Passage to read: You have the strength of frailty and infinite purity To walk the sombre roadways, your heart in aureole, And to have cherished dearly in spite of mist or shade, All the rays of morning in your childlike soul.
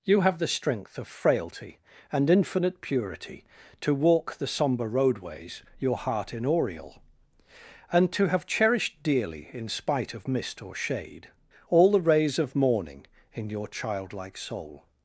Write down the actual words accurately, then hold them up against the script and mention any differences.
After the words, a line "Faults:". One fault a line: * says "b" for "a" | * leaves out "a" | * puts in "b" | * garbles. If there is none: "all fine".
You have the strength of frailty and infinite purity To walk the sombre roadways, your heart in aureole, And to have cherished dearly in spite of mist or shade, All the rays of morning in your childlike soul.
Faults:
all fine